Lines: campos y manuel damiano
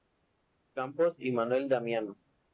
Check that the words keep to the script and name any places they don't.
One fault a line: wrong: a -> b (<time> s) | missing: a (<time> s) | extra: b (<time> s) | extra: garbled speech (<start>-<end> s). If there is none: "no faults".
no faults